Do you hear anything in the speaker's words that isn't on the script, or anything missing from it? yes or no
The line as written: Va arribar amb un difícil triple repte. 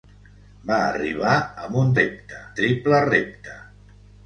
yes